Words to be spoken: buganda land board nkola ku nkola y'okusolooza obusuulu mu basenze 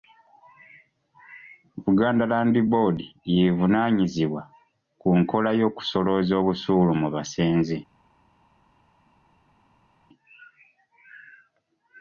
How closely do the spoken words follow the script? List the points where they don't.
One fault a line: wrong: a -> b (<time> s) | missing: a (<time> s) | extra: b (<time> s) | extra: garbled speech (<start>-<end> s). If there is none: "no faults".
wrong: nkola -> y'evunaanyizibwa (3.3 s)